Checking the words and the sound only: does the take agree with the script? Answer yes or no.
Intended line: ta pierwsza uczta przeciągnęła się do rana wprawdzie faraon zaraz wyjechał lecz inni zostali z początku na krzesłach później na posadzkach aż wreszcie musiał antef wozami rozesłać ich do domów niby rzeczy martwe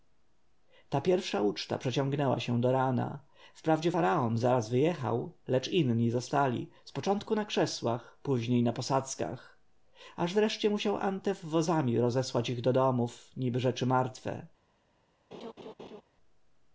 no